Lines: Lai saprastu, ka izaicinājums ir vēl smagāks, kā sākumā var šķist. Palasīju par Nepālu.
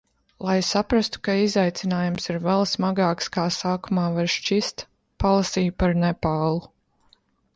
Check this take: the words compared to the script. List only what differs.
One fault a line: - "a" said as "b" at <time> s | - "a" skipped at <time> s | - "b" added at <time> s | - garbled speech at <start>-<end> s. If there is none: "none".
none